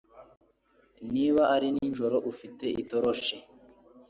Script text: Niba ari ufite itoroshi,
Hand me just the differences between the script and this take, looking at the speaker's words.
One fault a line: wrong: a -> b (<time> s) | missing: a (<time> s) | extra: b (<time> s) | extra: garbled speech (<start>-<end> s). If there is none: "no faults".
extra: nijoro (1.7 s)